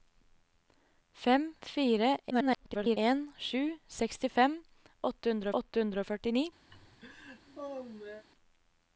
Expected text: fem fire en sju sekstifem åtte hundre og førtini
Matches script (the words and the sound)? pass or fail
fail